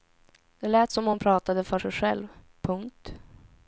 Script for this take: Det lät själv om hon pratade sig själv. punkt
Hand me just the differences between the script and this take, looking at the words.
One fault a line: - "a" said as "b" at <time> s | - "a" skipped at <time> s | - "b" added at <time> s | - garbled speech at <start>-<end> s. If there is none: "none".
- "själv" said as "som" at 0.9 s
- "för" added at 1.6 s